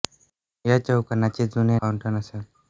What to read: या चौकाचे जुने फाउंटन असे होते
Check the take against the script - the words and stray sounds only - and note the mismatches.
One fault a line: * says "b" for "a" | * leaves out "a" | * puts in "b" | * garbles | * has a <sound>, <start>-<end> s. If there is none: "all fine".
all fine